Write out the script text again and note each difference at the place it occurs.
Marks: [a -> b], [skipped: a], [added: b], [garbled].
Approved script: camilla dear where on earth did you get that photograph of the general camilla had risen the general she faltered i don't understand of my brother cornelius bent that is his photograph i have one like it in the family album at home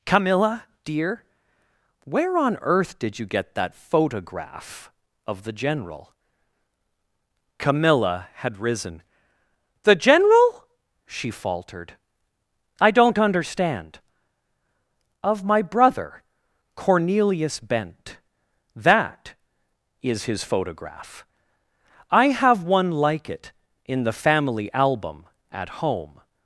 camilla dear where on earth did you get that photograph of the general camilla had risen the general she faltered i don't understand of my brother cornelius bent that is his photograph i have one like it in the family album at home